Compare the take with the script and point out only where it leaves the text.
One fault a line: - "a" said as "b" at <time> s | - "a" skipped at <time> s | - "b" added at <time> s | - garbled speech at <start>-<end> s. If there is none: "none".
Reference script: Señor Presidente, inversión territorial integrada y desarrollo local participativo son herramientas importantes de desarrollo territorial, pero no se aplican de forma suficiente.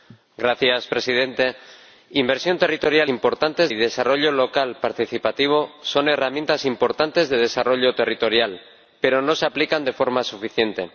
- "integrada" said as "importantes" at 3.1 s